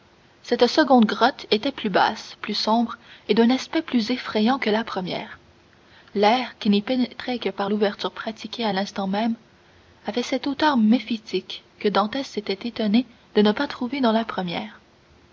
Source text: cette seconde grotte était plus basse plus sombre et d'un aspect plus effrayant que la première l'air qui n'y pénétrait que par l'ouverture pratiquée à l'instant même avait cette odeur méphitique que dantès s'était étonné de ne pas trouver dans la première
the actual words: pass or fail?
pass